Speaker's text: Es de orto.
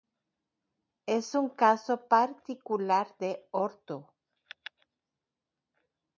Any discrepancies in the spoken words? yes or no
yes